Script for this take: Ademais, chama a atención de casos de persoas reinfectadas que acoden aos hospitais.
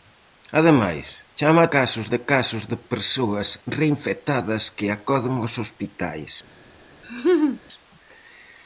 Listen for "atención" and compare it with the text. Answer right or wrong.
wrong